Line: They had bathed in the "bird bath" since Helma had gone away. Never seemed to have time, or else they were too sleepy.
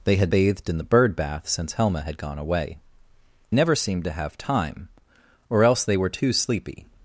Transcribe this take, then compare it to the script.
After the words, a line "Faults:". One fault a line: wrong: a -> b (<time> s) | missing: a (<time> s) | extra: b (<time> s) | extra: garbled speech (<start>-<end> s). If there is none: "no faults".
They had bathed in the "bird bath" since Helma had gone away. Never seemed to have time, or else they were too sleepy.
Faults:
no faults